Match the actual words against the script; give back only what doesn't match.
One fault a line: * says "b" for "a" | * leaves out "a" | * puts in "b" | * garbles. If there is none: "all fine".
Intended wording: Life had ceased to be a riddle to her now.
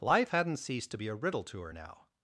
* says "hadn't" for "had"